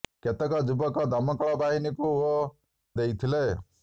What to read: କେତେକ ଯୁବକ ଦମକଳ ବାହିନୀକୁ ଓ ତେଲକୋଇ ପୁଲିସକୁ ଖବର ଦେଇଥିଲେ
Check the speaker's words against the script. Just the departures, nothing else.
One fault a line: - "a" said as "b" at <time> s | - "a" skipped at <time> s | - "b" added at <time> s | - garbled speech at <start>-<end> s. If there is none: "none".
- "ତେଲକୋଇ ପୁଲିସକୁ ଖବର" skipped at 2.3 s